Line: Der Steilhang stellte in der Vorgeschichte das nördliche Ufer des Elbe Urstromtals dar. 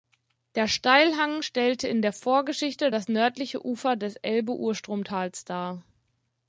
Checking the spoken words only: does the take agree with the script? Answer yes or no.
yes